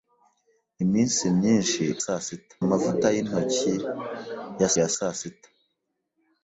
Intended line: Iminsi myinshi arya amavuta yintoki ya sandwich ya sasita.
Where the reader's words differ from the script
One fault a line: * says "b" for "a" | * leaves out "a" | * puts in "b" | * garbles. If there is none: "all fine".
* says "sasita" for "arya"
* leaves out "sandwich"